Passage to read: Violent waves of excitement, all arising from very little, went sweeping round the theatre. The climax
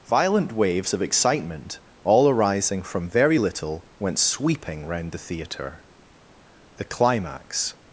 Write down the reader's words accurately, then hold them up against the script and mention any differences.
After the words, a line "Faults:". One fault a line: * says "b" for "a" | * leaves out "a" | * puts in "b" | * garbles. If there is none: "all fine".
Violent waves of excitement, all arising from very little, went sweeping round the theatre. The climax
Faults:
all fine